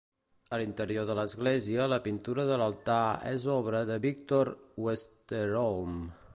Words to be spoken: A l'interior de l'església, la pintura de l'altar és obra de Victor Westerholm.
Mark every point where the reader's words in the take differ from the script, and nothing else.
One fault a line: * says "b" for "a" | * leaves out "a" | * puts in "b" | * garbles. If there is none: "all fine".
all fine